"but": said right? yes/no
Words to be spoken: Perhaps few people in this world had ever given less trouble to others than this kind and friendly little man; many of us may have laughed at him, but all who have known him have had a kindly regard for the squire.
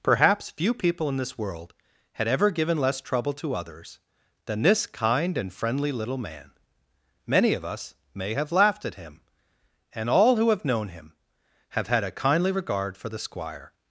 no